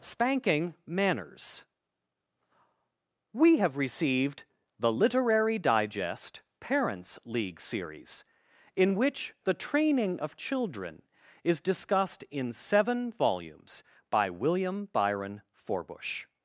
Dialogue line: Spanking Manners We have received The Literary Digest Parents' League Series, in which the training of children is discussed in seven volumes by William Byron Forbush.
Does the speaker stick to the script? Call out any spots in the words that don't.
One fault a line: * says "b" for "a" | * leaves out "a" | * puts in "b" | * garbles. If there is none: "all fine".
all fine